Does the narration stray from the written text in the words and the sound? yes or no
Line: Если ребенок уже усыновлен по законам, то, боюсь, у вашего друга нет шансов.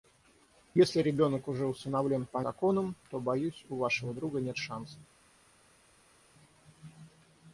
no